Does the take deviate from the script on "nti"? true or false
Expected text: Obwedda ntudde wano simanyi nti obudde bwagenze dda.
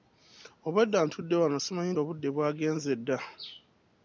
true